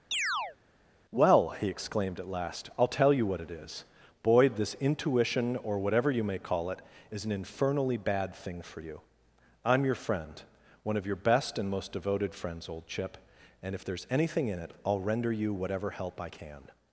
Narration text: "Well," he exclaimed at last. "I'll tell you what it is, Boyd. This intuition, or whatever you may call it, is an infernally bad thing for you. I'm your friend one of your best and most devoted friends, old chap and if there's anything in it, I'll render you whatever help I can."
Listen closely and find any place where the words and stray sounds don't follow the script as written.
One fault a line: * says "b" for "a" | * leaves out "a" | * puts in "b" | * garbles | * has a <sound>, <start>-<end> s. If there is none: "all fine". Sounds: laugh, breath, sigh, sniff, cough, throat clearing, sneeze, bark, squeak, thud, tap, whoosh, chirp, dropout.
* has a chirp, 0.1-0.6 s
* says "chip" for "chap"